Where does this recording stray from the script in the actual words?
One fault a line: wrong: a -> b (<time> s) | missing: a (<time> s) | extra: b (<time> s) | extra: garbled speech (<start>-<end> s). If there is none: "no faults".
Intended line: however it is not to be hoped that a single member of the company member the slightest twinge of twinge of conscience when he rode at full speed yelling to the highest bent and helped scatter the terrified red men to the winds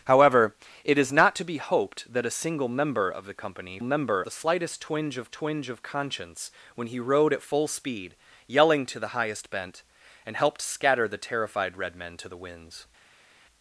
no faults